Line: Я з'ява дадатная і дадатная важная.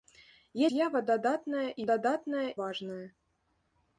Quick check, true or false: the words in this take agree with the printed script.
true